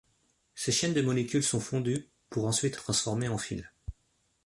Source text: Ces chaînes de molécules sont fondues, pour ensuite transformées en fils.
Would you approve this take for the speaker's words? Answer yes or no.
yes